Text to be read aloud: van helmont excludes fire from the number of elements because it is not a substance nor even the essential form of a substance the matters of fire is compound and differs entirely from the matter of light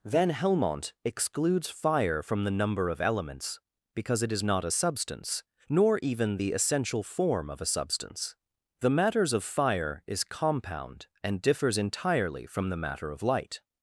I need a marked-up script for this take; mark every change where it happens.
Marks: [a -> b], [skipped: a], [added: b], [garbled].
van helmont excludes fire from the number of elements because it is not a substance nor even the essential form of a substance the matters of fire is compound and differs entirely from the matter of light